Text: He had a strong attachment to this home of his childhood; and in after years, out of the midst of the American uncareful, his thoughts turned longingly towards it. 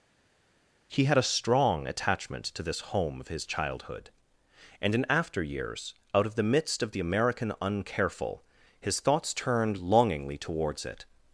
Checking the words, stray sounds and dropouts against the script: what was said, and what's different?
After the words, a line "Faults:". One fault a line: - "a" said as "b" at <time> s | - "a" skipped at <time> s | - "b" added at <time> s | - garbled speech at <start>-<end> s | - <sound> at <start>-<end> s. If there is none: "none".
He had a strong attachment to this home of his childhood; and in after years, out of the midst of the American uncareful, his thoughts turned longingly towards it.
Faults:
none